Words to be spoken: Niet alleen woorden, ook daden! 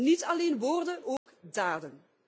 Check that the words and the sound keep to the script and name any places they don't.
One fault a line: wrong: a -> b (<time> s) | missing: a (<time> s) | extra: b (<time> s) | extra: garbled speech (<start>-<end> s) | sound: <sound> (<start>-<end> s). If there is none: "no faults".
sound: dropout (1.2-1.3 s)